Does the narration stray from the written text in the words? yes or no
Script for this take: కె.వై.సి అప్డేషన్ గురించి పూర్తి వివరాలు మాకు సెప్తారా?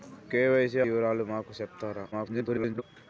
yes